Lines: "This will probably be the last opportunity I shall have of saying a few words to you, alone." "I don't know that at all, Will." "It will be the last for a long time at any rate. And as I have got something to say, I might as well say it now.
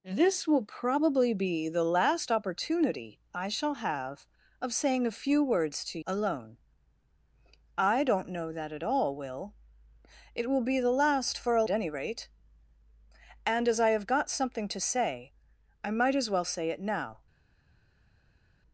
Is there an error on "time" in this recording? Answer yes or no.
yes